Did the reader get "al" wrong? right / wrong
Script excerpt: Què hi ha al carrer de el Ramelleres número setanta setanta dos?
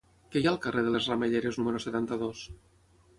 right